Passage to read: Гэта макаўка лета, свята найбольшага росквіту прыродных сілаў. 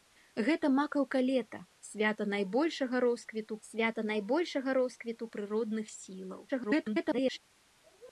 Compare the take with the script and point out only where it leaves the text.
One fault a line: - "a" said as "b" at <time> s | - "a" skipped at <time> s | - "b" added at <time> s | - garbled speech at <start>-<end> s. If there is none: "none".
- "свята найбольшага росквіту" added at 3.7 s
- garbled speech at 6.5-7.4 s